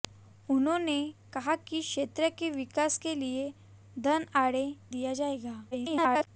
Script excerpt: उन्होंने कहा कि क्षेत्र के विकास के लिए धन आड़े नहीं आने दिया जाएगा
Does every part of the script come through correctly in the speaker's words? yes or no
no